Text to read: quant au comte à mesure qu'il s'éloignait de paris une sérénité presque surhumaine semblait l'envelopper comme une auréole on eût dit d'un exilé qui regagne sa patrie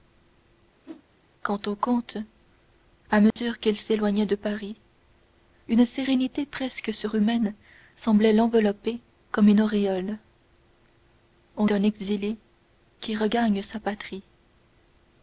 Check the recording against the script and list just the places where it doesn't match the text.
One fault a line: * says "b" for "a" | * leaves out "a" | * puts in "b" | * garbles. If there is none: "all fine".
* leaves out "eût dit"